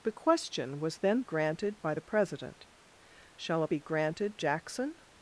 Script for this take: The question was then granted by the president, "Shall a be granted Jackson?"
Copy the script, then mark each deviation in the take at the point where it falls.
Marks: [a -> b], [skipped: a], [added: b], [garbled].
The question was then granted by the president, "Shall a be granted Jackson?"